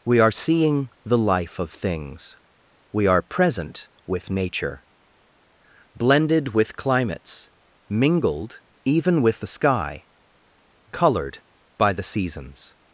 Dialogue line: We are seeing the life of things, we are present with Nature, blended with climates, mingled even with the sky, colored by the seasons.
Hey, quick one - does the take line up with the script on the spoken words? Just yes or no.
yes